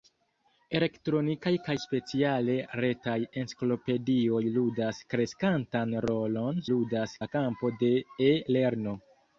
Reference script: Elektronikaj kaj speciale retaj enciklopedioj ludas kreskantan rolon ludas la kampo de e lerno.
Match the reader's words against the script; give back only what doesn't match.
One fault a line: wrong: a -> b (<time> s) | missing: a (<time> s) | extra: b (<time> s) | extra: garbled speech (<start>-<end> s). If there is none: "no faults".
no faults